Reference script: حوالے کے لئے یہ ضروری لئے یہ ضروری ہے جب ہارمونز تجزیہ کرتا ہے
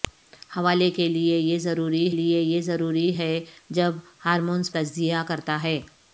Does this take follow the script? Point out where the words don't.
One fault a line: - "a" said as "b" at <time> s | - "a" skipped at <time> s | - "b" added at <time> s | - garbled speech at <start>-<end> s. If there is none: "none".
none